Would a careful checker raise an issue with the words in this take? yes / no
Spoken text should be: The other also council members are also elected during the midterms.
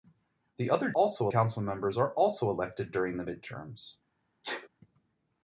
no